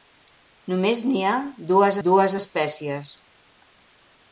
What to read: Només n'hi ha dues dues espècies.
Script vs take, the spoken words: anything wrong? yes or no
no